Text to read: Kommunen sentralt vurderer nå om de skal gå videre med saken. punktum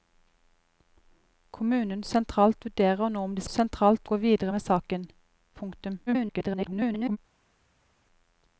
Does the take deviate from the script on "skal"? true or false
true